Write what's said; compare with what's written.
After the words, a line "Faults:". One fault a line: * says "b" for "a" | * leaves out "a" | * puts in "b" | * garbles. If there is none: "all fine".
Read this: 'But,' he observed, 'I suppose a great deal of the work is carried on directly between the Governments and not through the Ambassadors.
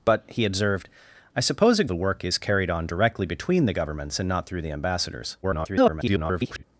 'But,' he observed, 'I suppose a the work is carried on directly between the Governments and not through the Ambassadors. [garbled]
Faults:
* leaves out "great deal of"
* garbles